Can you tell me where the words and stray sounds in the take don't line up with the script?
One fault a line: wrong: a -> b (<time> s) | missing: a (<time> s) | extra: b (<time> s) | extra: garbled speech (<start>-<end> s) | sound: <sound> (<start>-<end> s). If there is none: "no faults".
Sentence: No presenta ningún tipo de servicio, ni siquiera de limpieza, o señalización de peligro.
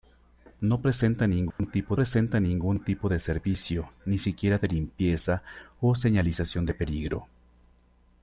sound: dropout (1.5-1.6 s)
extra: presenta ningún tipo (1.9 s)